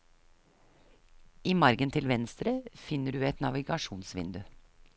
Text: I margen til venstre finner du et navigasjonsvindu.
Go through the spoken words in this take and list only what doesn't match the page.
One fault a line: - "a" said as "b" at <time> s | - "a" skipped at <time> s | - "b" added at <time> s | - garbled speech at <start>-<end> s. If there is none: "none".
none